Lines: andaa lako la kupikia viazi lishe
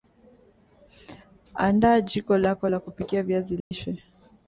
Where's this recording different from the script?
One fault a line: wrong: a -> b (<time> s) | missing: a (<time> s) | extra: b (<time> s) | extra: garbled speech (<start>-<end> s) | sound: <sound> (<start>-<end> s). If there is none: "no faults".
extra: jiko (2.0 s)
sound: dropout (3.6-3.7 s)